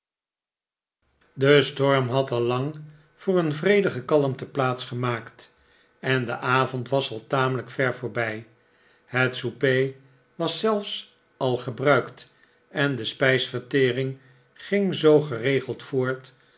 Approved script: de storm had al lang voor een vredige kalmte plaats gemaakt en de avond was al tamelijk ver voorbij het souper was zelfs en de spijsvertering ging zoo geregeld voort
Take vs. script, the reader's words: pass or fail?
fail